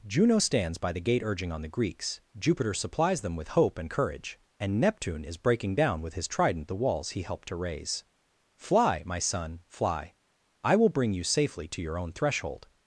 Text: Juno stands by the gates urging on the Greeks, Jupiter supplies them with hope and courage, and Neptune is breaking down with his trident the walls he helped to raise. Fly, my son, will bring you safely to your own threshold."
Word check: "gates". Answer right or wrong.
wrong